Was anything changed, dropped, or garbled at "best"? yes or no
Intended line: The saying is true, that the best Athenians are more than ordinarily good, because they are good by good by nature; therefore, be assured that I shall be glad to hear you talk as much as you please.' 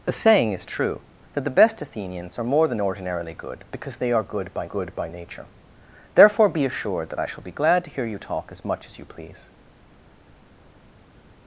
no